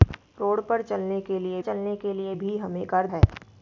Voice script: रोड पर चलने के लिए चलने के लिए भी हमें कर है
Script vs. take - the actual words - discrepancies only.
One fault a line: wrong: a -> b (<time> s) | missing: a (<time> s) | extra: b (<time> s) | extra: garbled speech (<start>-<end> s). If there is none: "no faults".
no faults